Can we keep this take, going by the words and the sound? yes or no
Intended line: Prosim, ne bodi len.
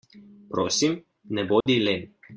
no